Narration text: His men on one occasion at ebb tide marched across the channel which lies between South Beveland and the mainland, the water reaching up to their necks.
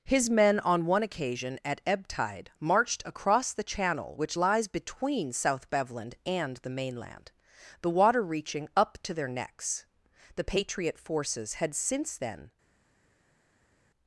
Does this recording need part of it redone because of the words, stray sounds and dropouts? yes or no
yes